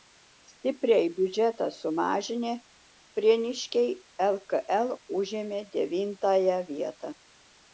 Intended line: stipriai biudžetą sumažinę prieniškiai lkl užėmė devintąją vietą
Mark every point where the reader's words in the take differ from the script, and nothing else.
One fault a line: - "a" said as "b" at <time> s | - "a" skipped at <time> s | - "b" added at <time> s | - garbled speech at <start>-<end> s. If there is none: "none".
none